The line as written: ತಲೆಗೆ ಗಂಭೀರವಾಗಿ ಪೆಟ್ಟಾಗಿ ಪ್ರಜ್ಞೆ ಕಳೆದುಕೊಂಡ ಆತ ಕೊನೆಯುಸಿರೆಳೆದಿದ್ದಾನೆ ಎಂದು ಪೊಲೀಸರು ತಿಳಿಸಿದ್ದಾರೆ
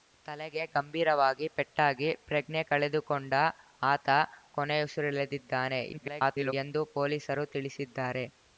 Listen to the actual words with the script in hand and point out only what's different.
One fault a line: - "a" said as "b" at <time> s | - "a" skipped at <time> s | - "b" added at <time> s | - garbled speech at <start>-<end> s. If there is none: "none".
- garbled speech at 5.9-6.5 s